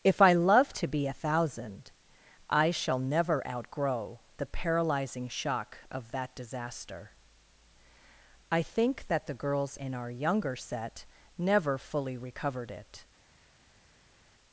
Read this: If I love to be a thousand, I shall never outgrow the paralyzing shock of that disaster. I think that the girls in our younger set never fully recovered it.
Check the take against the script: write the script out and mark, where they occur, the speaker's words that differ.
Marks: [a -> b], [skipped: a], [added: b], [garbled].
If I love to be a thousand, I shall never outgrow the paralyzing shock of that disaster. I think that the girls in our younger set never fully recovered it.